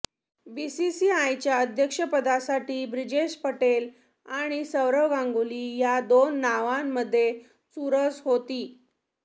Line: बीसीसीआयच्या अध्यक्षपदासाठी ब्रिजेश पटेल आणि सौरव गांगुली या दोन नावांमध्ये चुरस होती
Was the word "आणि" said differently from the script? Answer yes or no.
no